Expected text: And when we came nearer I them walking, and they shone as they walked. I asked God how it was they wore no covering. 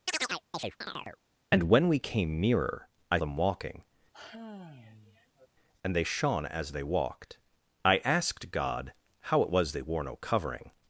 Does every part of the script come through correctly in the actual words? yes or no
yes